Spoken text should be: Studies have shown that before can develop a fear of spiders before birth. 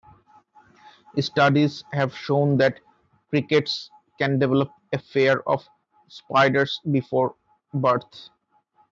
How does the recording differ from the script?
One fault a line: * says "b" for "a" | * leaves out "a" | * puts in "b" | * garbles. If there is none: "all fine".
* says "crickets" for "before"